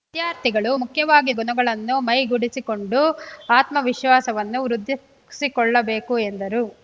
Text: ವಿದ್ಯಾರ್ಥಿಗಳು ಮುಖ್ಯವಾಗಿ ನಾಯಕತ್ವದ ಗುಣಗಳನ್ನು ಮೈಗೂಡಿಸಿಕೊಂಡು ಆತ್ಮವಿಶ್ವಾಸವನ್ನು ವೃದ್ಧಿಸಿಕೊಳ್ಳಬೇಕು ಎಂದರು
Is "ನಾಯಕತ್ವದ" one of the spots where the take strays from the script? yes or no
yes